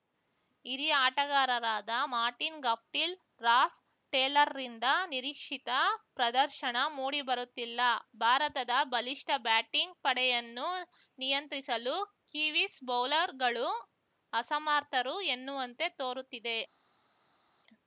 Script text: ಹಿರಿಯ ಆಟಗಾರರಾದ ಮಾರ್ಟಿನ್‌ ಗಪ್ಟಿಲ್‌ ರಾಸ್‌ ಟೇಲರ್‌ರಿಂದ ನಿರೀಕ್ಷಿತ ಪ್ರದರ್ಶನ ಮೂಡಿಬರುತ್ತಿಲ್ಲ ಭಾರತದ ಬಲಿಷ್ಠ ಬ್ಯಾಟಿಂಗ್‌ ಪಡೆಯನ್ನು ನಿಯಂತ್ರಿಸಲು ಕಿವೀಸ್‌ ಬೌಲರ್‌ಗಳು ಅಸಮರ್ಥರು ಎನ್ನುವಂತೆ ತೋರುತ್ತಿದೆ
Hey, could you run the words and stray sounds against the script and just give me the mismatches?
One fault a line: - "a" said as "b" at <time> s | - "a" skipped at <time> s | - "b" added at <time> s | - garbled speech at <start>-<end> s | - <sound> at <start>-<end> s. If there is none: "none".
none